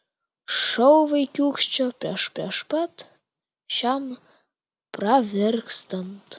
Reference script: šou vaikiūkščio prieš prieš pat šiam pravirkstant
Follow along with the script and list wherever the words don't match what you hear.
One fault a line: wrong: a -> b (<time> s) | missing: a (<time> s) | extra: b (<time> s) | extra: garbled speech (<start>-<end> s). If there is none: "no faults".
no faults